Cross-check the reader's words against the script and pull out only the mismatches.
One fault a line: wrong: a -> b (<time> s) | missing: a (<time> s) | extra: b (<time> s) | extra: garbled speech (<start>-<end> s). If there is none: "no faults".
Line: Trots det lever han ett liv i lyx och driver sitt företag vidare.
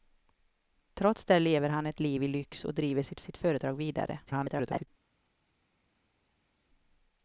extra: sitt (3.2 s)
extra: garbled speech (4.3-4.9 s)